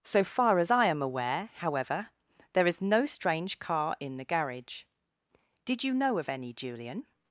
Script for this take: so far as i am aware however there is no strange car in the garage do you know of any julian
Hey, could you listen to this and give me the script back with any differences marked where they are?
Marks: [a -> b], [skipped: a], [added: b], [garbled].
so far as i am aware however there is no strange car in the garage [do -> did] you know of any julian